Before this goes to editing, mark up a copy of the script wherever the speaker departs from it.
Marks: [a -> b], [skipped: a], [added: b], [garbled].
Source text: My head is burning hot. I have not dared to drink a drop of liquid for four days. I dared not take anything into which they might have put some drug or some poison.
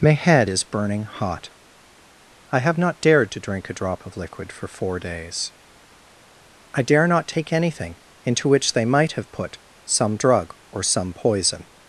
My head is burning hot. I have not dared to drink a drop of liquid for four days. I [dared -> dare] not take anything into which they might have put some drug or some poison.